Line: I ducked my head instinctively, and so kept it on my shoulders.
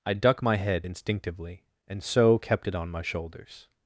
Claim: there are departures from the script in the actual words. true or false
true